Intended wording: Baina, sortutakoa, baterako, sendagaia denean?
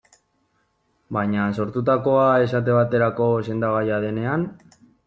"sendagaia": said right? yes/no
yes